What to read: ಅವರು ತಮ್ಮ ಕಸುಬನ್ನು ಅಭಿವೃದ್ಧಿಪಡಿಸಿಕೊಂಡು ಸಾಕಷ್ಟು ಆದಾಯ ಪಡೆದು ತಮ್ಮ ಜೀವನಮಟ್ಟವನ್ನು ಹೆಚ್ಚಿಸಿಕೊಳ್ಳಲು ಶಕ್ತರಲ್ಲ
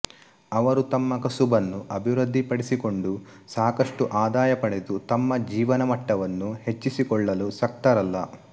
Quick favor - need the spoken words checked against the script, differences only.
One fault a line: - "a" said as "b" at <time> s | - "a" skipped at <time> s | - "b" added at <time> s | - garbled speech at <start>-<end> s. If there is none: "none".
none